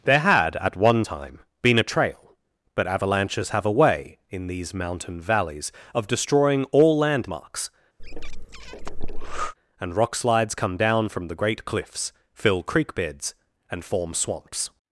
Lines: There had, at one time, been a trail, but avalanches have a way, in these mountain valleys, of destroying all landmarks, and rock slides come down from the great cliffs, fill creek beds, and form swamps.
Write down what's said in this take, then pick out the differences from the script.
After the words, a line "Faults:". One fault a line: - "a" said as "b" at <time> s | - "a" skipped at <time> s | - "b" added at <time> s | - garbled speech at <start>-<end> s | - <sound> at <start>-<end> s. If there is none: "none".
There had, at one time, been a trail, but avalanches have a way, in these mountain valleys, of destroying all landmarks, and rock slides come down from the great cliffs, fill creek beds, and form swamps.
Faults:
- breath at 8.0-9.5 s